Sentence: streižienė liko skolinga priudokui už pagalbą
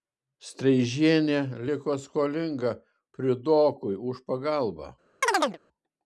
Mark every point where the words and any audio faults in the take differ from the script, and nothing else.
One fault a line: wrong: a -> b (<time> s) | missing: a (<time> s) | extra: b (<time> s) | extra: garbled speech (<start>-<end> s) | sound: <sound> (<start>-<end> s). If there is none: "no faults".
sound: chirp (5.2-5.6 s)